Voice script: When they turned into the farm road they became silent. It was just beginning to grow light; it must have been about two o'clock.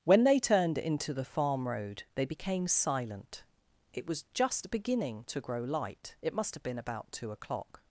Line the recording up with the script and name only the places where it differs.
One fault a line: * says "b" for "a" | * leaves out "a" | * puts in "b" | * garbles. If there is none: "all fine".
all fine